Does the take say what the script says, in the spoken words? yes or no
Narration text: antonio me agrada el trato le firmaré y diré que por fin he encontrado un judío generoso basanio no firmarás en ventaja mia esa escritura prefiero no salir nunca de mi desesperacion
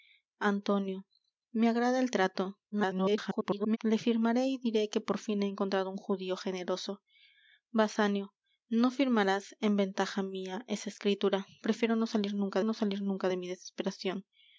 no